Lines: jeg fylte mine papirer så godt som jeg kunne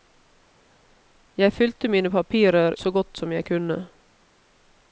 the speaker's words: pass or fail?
pass